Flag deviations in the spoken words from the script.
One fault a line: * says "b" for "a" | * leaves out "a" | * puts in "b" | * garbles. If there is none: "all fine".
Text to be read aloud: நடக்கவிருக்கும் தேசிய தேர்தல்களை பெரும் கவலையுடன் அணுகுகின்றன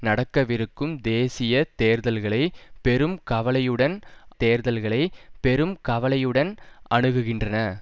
* puts in "தேர்தல்களை பெரும் கவலையுடன்"